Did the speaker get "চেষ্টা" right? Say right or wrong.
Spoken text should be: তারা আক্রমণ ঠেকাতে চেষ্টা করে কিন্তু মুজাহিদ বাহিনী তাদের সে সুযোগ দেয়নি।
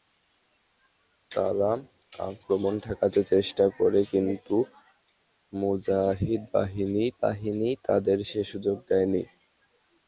right